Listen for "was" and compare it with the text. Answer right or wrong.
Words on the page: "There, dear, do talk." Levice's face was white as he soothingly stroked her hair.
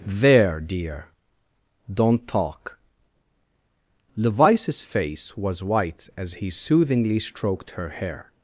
right